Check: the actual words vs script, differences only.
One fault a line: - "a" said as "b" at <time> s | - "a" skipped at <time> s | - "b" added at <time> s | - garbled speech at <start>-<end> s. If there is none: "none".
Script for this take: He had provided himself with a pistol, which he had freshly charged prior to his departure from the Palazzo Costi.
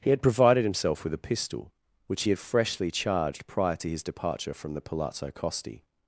none